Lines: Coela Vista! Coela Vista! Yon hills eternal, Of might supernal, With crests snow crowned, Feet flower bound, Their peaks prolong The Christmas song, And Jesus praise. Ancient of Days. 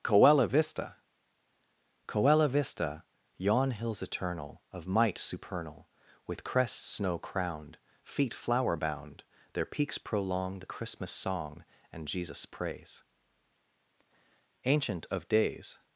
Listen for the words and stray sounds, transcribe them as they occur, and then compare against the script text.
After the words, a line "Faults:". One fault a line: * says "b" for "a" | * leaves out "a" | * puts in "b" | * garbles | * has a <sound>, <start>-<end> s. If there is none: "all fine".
Coela Vista! Coela Vista! Yon hills eternal, Of might supernal, With crests snow crowned, Feet flower bound, Their peaks prolong The Christmas song, And Jesus praise. Ancient of Days.
Faults:
all fine